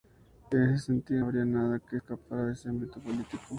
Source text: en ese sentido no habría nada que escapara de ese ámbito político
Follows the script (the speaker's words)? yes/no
no